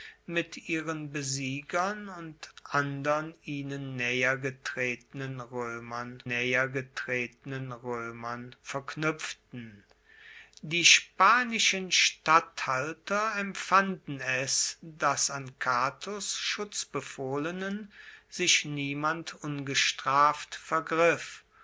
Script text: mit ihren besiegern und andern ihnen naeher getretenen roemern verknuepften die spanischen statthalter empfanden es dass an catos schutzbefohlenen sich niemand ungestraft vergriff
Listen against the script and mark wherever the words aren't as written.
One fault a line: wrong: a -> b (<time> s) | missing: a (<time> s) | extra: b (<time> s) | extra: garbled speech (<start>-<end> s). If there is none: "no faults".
extra: naeher getretenen roemern (6.3 s)